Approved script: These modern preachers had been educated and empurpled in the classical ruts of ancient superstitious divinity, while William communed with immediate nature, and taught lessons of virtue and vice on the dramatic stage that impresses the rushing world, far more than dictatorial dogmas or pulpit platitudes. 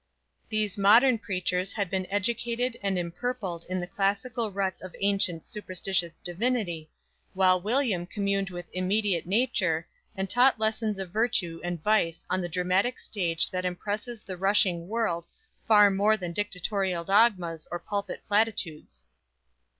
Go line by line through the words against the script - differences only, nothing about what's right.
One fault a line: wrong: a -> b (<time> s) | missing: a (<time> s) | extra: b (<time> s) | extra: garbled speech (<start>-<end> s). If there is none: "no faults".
no faults